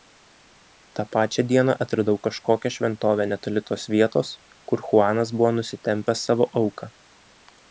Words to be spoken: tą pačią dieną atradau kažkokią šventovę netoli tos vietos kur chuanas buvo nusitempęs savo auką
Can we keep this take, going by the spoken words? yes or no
yes